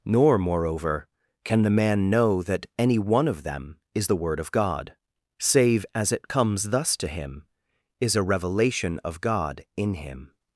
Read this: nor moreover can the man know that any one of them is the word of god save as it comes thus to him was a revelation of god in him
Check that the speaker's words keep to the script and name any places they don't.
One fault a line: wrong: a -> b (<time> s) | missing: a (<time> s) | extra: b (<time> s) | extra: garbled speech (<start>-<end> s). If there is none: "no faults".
wrong: was -> is (8.0 s)